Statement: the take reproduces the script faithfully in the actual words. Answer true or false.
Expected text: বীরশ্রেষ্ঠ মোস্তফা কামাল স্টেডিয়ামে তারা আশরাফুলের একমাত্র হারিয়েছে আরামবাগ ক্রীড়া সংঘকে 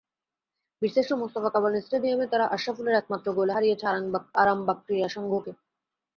false